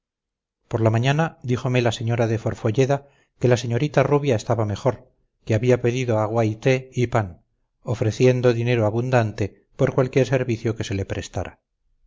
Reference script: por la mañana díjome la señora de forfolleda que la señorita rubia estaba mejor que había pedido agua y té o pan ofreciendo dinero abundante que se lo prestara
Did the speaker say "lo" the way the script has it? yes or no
no